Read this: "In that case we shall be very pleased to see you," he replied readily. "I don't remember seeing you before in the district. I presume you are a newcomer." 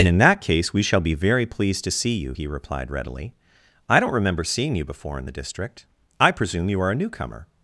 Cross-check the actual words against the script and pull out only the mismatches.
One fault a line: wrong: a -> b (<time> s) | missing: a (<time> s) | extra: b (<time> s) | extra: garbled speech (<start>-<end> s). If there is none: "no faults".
no faults